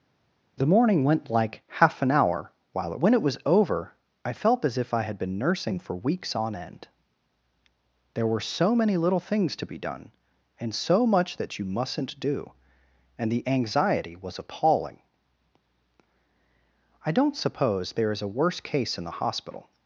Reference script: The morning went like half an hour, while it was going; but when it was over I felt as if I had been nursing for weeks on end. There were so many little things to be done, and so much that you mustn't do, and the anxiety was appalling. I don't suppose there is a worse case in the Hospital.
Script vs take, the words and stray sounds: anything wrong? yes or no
yes